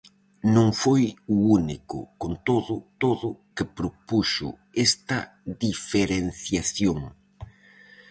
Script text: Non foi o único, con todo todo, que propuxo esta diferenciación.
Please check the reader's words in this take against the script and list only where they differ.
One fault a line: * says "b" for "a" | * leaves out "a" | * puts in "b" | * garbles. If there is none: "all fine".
all fine